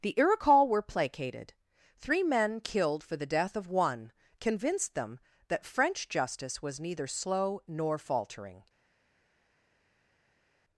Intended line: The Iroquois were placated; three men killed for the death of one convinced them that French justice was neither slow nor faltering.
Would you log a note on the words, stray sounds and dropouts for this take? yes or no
no